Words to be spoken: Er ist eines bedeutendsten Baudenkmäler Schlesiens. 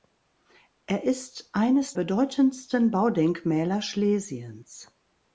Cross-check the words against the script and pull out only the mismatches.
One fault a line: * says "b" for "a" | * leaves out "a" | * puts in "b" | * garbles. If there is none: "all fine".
all fine